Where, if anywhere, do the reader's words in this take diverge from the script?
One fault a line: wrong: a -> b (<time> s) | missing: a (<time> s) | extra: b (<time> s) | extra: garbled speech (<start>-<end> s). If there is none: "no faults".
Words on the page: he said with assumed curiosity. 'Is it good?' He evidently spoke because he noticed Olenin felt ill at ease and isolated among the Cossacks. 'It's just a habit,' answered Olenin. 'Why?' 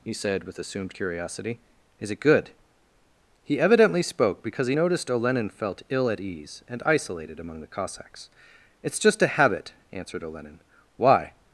no faults